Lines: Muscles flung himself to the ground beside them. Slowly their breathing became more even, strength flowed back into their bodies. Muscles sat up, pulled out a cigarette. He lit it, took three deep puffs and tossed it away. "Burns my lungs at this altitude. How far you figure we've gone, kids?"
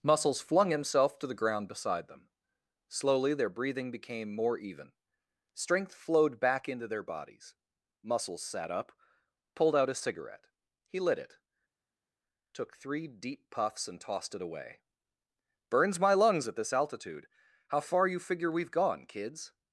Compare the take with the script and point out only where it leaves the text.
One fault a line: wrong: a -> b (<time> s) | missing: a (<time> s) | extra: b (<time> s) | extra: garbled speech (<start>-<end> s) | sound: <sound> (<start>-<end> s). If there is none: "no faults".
no faults